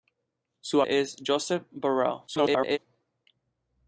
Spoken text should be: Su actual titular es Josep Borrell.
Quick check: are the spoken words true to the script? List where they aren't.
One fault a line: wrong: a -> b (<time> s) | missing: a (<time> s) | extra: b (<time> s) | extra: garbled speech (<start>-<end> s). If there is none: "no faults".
missing: actual titular (0.8 s)
extra: garbled speech (2.3-2.8 s)